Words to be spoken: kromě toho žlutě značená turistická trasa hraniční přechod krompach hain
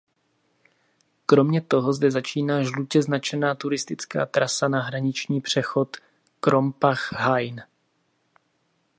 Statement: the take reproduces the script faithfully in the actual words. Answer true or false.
false